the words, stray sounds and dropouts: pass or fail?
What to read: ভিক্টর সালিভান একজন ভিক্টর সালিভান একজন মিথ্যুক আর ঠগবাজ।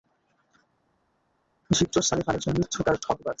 fail